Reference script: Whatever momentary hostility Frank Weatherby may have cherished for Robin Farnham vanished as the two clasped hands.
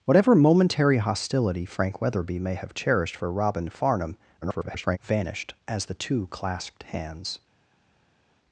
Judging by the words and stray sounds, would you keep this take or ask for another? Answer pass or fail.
fail